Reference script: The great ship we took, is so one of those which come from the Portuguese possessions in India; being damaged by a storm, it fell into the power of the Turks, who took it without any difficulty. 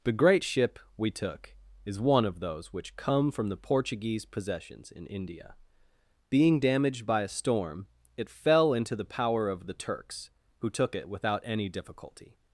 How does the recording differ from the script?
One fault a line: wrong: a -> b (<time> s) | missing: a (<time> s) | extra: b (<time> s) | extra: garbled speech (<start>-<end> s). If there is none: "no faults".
missing: so (2.0 s)